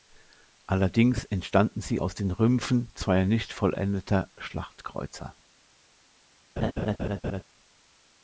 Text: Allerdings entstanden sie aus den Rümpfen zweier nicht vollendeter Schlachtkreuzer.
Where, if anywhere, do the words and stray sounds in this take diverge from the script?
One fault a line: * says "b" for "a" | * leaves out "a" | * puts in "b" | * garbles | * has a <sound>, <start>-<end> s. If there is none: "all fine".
* has a laugh, 6.6-7.4 s